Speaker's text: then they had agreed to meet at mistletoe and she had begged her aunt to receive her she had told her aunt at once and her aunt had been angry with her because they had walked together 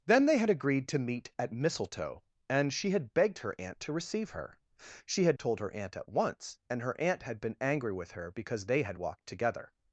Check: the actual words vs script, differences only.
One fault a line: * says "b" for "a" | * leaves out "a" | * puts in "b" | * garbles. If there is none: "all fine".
all fine